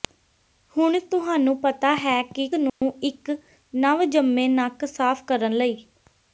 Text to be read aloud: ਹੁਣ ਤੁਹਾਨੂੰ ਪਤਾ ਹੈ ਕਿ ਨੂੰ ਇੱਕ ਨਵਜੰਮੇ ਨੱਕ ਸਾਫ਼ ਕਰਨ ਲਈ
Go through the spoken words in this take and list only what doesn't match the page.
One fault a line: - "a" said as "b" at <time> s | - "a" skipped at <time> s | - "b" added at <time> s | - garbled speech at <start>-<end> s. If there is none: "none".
none